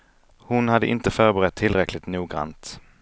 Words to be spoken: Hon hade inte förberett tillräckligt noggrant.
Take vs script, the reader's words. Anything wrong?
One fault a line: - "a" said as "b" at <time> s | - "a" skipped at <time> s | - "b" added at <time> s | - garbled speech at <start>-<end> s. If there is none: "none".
none